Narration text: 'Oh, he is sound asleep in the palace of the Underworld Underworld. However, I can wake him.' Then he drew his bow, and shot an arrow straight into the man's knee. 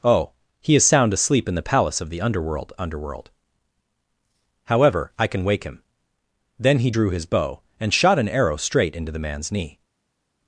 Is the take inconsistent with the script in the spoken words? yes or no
no